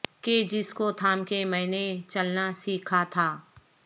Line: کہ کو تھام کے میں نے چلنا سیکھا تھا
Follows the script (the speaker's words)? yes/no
no